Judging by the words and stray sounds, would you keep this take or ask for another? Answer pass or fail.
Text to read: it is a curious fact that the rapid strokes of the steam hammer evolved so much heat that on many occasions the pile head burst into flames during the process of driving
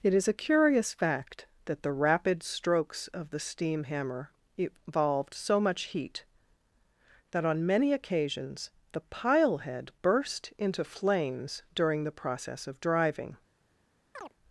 fail